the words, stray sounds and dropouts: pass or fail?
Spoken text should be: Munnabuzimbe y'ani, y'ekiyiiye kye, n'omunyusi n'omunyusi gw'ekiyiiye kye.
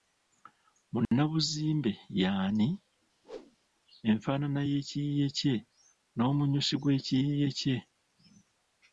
fail